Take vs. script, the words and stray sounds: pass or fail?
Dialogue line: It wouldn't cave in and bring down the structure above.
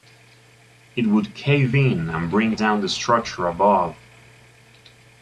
fail